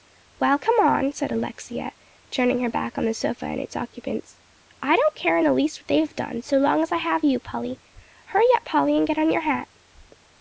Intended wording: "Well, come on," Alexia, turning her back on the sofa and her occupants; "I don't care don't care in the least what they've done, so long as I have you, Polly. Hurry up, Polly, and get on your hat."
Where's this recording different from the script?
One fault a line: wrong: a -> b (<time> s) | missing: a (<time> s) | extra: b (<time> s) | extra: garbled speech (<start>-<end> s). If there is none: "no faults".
extra: said (1.1 s)
wrong: her -> its (3.6 s)
missing: don't care (5.4 s)